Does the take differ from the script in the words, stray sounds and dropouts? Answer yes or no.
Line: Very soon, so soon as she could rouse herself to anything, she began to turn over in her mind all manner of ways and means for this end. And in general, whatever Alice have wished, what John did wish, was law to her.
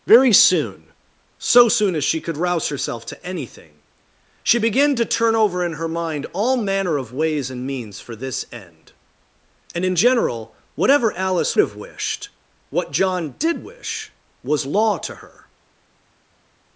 no